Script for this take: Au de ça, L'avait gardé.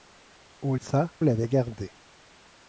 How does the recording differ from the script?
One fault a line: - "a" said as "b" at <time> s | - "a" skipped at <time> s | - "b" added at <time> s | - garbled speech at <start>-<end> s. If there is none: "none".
none